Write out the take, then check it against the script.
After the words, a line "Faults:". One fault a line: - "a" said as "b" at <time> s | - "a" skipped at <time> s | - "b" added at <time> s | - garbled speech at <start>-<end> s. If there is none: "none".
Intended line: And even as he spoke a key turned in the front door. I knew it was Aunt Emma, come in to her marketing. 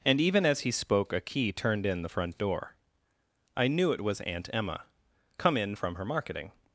And even as he spoke a key turned in the front door. I knew it was Aunt Emma, come in from her marketing.
Faults:
- "to" said as "from" at 5.7 s